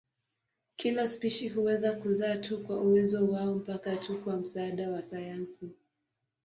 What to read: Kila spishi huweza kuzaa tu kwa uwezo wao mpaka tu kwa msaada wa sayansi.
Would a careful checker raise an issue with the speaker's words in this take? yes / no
no